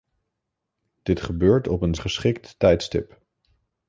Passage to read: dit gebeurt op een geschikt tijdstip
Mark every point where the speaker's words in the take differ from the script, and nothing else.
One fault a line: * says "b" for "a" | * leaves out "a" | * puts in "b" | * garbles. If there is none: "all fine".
all fine